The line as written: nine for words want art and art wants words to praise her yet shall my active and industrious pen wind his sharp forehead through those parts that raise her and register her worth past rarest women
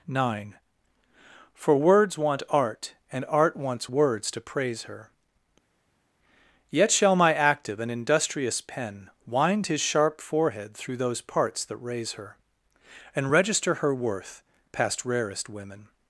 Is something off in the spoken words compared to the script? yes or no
no